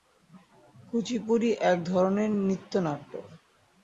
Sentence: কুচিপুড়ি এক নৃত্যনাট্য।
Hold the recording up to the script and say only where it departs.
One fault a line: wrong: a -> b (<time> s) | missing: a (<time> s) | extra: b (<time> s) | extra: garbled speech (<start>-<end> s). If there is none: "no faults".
extra: ধরনের (1.8 s)